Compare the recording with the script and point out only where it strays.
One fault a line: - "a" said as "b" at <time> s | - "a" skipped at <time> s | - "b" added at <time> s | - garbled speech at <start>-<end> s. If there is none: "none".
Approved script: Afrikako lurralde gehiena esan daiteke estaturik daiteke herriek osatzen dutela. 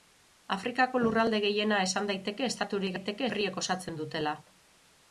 none